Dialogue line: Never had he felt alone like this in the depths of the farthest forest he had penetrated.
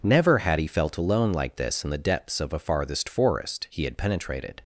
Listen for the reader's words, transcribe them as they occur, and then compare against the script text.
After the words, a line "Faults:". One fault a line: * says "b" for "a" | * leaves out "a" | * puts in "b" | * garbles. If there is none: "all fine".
Never had he felt alone like this in the depths of a farthest forest he had penetrated.
Faults:
* says "a" for "the"